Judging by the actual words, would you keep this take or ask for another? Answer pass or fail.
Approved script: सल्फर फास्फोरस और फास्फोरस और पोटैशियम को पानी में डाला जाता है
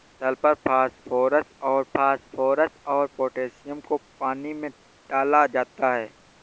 pass